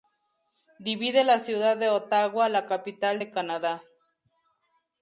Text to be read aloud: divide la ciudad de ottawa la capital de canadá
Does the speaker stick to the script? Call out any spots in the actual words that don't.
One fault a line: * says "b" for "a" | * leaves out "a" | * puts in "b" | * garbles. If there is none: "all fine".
all fine